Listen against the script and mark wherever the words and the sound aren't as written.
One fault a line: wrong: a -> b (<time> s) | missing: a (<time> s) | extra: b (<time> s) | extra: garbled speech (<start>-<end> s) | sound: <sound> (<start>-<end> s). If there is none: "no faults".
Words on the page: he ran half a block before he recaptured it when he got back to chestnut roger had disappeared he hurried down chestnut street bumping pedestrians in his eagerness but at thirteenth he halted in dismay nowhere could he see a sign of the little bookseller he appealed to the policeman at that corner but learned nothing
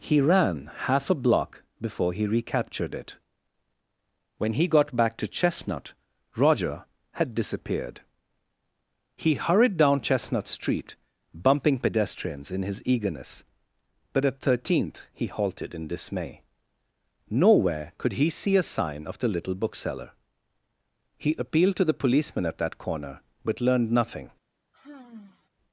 sound: sigh (24.7-25.5 s)